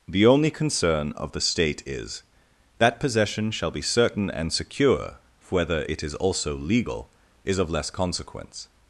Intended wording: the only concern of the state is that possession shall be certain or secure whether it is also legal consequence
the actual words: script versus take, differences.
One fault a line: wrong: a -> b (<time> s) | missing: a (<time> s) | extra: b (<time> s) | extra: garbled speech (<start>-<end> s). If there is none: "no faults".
wrong: or -> and (4.3 s)
extra: is of less (7.4 s)